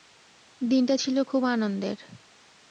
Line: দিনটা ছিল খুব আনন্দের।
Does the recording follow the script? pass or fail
pass